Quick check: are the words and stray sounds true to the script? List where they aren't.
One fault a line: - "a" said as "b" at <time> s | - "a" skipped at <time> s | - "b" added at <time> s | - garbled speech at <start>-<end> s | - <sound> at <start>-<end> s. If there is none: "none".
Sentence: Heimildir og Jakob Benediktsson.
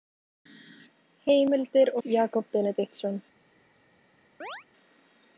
- chirp at 4.4-4.6 s